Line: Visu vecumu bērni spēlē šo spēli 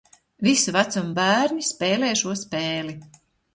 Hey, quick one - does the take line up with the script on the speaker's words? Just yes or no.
yes